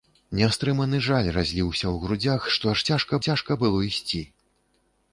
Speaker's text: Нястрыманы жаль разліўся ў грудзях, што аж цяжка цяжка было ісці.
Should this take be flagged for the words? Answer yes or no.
no